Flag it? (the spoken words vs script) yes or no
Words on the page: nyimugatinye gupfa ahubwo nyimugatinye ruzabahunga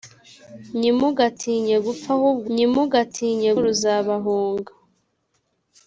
no